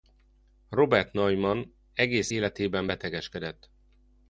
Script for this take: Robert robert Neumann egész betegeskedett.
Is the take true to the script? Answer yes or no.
no